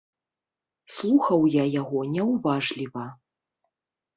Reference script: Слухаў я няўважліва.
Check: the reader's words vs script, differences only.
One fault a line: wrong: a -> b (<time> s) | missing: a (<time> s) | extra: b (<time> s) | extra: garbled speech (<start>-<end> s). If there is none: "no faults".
extra: яго (1.8 s)